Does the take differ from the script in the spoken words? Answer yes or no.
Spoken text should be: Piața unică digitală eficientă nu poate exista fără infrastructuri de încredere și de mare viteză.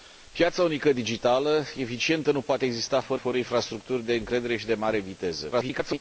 yes